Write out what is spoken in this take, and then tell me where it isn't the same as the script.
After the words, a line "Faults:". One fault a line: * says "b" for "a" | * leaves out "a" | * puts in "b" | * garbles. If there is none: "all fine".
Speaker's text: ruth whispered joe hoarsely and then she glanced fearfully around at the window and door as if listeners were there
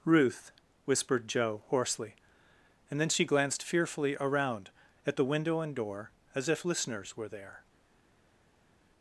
ruth whispered joe hoarsely and then she glanced fearfully around at the window and door as if listeners were there
Faults:
all fine